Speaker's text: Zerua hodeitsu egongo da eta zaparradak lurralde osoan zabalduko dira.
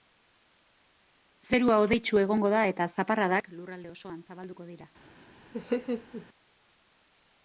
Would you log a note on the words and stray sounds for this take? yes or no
yes